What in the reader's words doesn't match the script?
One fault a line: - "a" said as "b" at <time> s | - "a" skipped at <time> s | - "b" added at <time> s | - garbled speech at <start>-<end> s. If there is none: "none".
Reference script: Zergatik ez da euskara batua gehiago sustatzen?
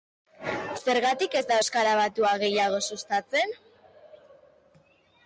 none